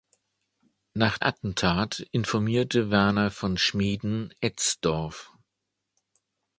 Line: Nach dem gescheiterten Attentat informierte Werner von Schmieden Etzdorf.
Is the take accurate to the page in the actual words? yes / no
no